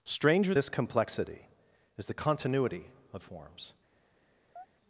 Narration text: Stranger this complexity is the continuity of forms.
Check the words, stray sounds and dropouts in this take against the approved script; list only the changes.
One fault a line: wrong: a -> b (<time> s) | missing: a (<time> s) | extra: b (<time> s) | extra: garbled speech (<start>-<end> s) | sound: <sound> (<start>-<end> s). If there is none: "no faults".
sound: chirp (4.6-4.7 s)